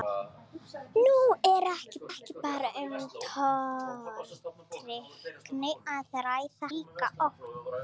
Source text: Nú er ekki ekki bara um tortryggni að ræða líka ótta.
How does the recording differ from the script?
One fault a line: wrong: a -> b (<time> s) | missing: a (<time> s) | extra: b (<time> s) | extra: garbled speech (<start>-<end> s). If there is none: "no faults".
no faults